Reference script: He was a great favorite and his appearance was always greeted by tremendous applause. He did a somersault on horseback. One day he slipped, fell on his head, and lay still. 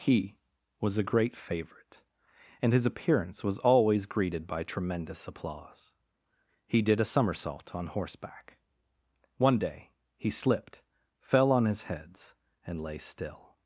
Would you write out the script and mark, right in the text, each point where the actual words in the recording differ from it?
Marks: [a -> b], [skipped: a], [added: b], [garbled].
He was a great favorite and his appearance was always greeted by tremendous applause. He did a somersault on horseback. One day he slipped, fell on his [head, -> heads] and lay still.